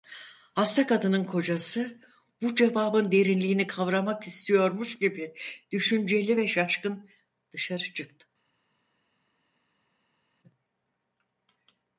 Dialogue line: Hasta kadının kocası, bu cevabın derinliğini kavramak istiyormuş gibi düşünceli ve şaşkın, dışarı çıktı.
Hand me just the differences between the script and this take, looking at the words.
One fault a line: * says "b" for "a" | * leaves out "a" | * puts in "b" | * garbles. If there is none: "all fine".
all fine